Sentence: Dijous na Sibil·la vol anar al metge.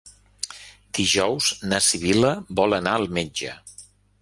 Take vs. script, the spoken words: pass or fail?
pass